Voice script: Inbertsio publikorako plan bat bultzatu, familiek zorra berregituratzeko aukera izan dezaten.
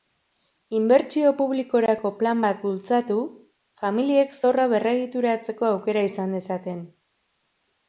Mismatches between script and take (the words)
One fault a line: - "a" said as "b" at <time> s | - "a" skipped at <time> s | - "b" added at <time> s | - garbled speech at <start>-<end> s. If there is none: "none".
none